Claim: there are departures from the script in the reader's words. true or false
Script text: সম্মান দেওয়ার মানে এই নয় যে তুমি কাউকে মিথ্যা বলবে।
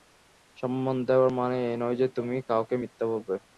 false